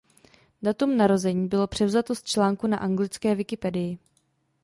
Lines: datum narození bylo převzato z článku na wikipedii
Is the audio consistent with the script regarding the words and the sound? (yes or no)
no